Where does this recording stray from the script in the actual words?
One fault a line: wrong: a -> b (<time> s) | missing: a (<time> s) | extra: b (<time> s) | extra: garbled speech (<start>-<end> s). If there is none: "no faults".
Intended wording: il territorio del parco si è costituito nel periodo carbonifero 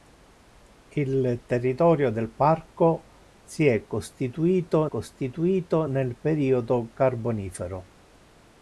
extra: costituito (4.9 s)